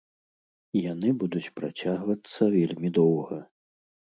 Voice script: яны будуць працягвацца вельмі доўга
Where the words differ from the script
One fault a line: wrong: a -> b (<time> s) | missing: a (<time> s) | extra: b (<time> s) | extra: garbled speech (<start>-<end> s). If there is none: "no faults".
no faults